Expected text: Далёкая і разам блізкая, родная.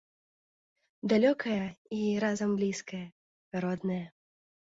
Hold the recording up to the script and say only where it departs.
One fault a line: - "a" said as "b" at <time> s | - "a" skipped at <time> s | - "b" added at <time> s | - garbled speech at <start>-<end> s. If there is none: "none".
none